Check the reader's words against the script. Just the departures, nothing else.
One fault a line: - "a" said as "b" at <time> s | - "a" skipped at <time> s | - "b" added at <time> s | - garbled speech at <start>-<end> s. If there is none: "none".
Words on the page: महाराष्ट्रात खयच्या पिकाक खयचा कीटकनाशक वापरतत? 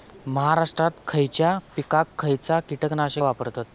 none